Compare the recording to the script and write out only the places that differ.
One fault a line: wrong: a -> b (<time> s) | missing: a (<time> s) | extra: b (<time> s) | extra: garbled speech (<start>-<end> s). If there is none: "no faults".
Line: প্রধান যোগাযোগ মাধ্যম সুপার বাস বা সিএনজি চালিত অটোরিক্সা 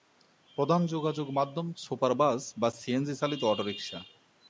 no faults